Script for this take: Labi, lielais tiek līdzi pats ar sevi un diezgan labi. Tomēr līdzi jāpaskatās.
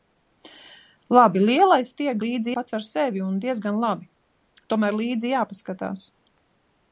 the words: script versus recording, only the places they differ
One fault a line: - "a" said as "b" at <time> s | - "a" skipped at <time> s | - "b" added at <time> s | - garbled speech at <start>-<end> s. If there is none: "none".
none